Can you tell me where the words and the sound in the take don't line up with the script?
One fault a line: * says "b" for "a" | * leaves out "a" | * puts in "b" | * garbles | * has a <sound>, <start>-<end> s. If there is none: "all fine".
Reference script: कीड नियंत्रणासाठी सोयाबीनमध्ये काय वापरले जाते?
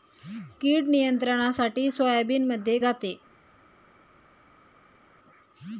* leaves out "काय वापरले"